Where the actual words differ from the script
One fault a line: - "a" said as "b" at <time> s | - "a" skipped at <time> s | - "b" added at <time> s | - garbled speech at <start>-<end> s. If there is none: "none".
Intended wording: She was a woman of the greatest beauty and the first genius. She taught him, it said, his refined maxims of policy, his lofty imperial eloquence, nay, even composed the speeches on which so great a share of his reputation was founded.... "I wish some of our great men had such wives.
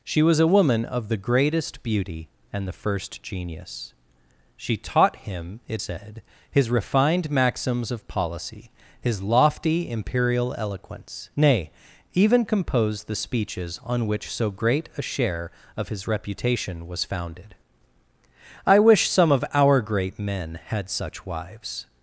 none